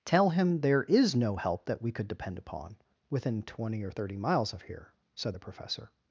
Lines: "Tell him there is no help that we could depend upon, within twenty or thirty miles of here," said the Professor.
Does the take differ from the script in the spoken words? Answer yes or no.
no